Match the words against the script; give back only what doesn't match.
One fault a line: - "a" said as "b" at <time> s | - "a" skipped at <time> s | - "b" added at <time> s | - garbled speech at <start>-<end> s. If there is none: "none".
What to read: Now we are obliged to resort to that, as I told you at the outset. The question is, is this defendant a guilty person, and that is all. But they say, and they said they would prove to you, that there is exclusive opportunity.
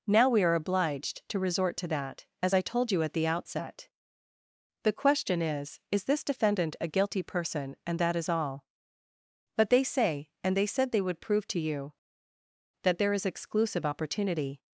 none